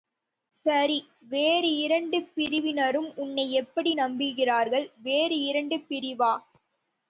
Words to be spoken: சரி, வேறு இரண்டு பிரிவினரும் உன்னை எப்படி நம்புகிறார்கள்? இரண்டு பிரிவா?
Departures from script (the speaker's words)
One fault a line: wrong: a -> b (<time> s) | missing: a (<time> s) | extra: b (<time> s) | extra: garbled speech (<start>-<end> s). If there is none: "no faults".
extra: வேறு (5.0 s)